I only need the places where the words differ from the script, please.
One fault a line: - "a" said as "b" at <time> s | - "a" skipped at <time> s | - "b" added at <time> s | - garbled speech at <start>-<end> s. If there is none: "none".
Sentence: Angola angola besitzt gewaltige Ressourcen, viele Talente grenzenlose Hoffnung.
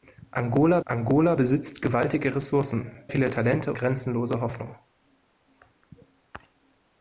none